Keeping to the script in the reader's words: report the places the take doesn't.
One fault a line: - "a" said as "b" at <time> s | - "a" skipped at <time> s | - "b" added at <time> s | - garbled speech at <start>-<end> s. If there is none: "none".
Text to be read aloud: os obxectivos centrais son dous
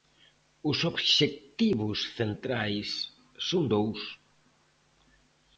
none